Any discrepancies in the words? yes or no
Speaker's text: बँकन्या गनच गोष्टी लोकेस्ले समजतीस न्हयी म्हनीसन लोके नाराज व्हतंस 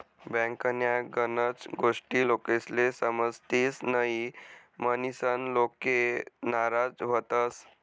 no